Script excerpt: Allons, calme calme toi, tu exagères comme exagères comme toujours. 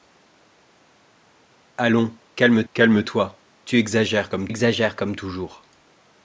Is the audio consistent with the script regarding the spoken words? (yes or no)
yes